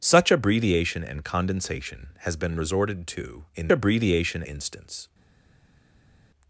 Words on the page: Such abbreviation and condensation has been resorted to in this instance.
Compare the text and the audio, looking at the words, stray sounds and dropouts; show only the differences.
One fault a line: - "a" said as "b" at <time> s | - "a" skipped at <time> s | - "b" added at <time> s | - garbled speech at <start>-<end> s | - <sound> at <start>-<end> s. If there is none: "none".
- "this" said as "abbreviation" at 3.7 s